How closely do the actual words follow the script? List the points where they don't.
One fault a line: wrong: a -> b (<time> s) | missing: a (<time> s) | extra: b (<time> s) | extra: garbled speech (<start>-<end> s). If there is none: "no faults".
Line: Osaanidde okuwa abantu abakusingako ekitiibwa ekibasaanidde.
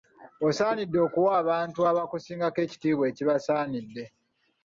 no faults